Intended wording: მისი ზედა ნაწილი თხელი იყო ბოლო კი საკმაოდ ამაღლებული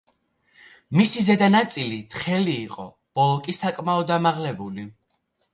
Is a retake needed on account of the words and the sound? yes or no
no